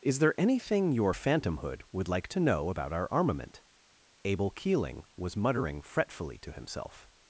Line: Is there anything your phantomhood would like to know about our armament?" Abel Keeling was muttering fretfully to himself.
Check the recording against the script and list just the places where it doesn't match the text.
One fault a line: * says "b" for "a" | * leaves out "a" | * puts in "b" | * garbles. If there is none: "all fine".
all fine